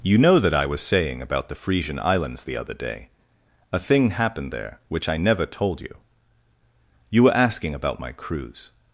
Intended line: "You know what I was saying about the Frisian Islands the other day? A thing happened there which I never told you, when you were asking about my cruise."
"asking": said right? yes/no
yes